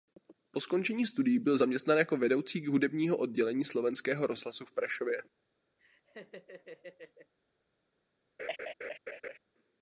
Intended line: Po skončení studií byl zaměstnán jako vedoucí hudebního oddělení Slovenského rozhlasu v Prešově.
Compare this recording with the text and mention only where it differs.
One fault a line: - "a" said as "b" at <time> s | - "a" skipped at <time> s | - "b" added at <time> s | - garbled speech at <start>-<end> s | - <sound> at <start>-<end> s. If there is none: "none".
- laugh at 5.8-7.3 s
- laugh at 8.4-9.4 s